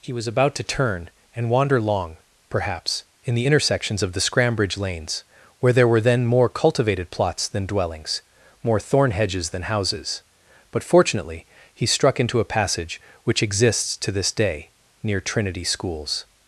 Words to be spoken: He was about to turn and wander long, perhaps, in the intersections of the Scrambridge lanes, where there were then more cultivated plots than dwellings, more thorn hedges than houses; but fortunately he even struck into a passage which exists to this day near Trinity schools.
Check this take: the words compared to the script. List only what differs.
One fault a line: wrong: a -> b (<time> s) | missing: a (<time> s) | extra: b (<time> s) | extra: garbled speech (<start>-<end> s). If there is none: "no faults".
missing: even (11.8 s)